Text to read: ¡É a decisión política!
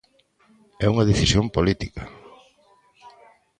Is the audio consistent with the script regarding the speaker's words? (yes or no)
no